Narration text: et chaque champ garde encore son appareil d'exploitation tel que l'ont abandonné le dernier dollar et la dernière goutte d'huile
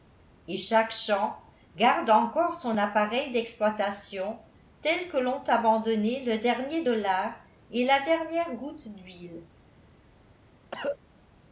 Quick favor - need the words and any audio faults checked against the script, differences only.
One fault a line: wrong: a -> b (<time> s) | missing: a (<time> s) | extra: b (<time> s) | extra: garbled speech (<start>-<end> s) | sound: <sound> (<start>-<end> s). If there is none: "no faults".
sound: cough (10.7-11.0 s)